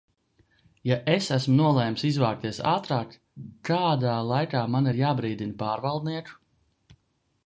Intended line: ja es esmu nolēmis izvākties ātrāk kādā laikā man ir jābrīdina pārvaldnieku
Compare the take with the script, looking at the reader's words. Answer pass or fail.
pass